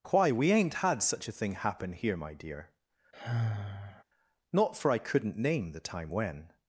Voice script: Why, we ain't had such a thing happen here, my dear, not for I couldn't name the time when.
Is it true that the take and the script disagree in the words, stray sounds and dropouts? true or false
true